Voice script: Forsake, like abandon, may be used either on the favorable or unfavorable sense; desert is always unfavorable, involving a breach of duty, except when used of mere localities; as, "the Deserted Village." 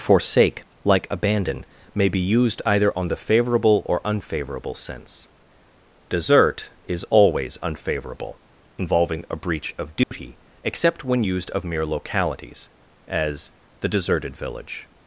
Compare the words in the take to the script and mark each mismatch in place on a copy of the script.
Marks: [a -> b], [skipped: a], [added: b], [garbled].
Forsake, like abandon, may be used either on the favorable or unfavorable sense; desert is always unfavorable, involving a breach of duty, except when used of mere localities; as, "the Deserted Village."